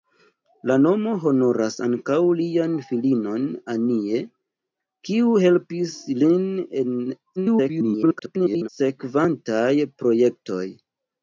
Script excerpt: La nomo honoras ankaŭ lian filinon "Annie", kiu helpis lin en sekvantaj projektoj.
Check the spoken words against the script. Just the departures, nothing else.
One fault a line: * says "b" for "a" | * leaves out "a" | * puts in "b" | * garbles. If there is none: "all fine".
* garbles